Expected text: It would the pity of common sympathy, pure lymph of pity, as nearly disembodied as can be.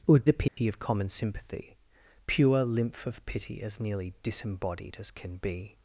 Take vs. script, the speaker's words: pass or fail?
pass